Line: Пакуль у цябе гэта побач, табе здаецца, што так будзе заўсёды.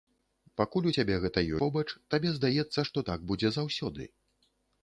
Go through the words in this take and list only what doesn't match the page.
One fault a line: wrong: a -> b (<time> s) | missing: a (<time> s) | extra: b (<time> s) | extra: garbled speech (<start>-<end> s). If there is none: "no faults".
no faults